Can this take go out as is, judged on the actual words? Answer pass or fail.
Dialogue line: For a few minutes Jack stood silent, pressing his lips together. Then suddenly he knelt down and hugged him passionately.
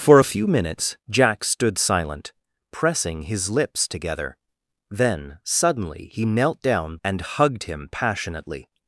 pass